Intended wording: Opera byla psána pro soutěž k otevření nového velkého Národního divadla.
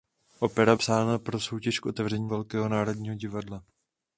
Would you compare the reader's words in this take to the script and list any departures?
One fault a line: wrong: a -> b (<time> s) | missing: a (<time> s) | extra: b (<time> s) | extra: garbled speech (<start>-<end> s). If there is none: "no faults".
missing: byla (0.8 s)
missing: nového (2.3 s)